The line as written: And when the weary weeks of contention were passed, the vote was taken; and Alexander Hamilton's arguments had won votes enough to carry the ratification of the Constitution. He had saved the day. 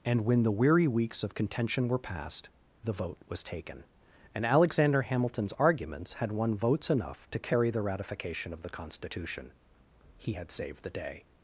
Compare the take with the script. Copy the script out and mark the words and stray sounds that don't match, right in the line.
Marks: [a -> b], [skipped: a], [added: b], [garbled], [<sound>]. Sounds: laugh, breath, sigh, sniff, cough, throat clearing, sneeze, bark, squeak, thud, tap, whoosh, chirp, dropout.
And when the weary weeks of contention were passed, the vote was taken; and Alexander Hamilton's arguments had won votes enough to carry the ratification of the Constitution. He had saved the day.